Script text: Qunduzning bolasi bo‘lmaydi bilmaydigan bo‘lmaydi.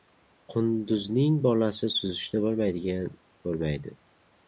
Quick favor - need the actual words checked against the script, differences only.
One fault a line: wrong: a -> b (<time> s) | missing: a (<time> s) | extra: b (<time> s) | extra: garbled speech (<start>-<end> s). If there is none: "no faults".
wrong: bo‘lmaydi -> suzishni (2.0 s)